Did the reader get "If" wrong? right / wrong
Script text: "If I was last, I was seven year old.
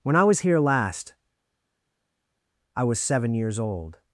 wrong